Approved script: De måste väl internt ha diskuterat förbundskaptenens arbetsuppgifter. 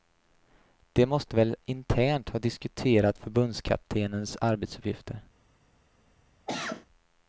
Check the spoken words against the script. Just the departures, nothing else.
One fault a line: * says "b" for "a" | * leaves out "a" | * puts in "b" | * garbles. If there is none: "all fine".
all fine